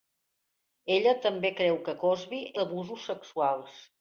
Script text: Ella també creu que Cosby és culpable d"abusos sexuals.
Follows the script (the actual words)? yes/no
no